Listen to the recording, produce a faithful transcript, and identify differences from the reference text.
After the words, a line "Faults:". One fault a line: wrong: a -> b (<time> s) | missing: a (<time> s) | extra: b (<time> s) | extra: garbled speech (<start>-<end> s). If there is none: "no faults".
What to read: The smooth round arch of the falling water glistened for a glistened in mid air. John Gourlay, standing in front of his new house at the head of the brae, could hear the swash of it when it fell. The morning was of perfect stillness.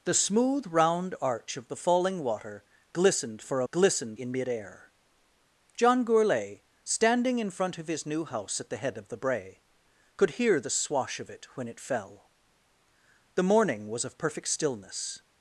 The smooth round arch of the falling water glistened for a glistened in mid air. John Gourlay, standing in front of his new house at the head of the brae, could hear the swash of it when it fell. The morning was of perfect stillness.
Faults:
no faults